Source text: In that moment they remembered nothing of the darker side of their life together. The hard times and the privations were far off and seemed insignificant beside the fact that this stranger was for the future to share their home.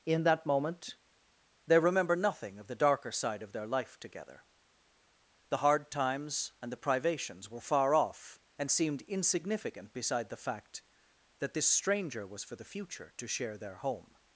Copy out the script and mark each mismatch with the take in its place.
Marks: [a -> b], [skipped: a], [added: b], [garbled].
In that moment they [remembered -> remember] nothing of the darker side of their life together. The hard times and the privations were far off and seemed insignificant beside the fact that this stranger was for the future to share their home.